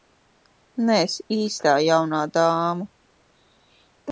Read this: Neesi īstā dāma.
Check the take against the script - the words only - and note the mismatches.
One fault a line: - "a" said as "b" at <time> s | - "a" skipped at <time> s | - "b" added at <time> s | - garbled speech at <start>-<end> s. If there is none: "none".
- "jaunā" added at 1.9 s